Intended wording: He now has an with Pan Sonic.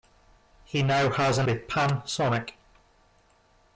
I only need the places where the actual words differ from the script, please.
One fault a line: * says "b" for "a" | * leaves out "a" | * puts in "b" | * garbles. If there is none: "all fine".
all fine